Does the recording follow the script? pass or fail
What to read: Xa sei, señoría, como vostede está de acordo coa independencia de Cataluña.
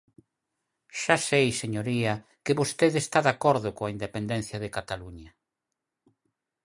fail